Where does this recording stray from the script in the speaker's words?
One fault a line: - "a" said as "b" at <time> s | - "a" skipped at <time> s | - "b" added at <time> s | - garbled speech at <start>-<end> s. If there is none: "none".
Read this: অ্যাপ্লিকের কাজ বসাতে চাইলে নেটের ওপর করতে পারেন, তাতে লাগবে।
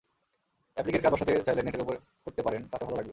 - "ভালো" added at 2.8 s